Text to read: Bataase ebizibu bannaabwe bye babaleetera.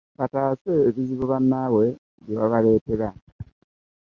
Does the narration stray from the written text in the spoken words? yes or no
no